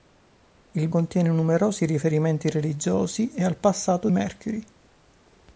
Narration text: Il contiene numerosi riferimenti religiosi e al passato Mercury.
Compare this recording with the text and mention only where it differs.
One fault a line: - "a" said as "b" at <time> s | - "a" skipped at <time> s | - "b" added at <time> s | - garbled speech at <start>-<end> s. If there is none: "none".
none